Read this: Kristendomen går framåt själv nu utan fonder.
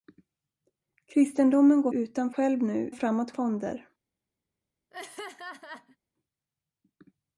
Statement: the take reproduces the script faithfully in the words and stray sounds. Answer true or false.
false